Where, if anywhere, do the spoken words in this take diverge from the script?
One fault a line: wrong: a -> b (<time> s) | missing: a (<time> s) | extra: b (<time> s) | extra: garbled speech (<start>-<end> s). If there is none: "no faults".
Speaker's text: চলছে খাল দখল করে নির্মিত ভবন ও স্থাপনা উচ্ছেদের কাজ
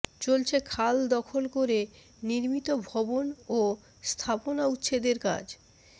no faults